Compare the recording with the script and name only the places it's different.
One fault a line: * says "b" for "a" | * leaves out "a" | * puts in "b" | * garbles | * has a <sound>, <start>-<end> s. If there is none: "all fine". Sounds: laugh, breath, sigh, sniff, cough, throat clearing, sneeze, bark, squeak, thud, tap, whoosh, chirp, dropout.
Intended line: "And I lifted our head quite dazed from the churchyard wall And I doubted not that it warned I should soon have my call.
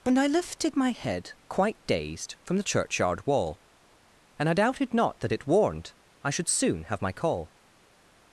* says "my" for "our"